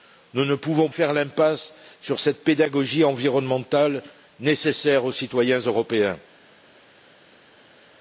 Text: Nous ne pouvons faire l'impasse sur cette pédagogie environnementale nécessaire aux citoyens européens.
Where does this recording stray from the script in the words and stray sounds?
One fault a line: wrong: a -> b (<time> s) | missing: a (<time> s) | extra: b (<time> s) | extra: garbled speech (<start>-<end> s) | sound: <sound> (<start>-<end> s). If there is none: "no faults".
no faults